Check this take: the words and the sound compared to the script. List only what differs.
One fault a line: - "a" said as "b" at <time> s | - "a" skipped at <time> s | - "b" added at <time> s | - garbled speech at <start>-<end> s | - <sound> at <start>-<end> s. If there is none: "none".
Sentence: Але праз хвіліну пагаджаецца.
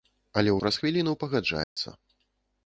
- dropout at 1.6-1.8 s